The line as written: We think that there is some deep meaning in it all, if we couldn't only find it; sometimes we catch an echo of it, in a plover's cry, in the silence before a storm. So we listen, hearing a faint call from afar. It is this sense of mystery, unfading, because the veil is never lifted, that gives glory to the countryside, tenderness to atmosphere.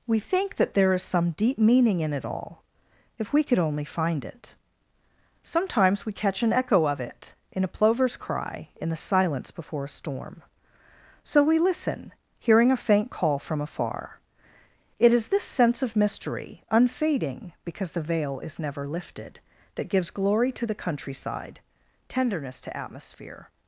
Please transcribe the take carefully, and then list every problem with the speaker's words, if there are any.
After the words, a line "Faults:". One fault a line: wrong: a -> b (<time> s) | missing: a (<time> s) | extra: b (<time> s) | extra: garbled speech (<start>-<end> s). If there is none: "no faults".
We think that there is some deep meaning in it all, if we could only find it; sometimes we catch an echo of it, in a plover's cry, in the silence before a storm. So we listen, hearing a faint call from afar. It is this sense of mystery, unfading, because the veil is never lifted, that gives glory to the countryside, tenderness to atmosphere.
Faults:
wrong: couldn't -> could (3.4 s)